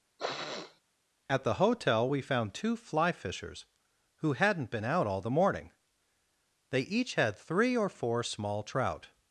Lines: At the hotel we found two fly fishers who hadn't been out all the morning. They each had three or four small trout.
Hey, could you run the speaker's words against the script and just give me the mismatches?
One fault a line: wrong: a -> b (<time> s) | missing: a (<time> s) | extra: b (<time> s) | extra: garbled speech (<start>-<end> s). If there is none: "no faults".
no faults